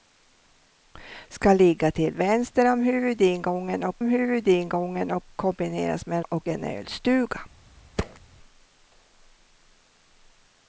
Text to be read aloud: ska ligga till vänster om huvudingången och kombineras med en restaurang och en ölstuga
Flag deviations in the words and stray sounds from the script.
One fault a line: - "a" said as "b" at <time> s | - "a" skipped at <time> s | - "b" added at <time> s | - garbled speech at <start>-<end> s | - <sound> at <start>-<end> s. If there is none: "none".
- "om huvudingången och" added at 4.0 s
- "restaurang" skipped at 6.2 s
- thud at 8.0-8.2 s